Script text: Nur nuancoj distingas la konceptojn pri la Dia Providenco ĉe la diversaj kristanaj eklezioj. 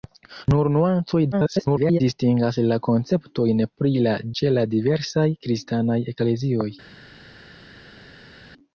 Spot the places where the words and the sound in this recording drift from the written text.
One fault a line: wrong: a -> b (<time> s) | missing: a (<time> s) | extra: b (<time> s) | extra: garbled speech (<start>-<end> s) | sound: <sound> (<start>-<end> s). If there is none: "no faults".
extra: garbled speech (1.3-2.0 s)
missing: Dia Providenco (4.1 s)